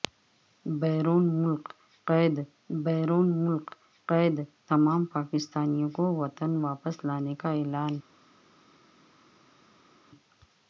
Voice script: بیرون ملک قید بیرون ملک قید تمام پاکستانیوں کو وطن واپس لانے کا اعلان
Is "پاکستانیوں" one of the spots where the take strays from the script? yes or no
no